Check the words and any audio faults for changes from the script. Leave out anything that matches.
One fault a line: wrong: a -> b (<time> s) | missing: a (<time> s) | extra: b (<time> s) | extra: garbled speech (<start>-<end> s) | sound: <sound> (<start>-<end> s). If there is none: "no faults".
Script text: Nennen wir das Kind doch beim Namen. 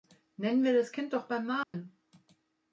sound: dropout (1.6-1.7 s)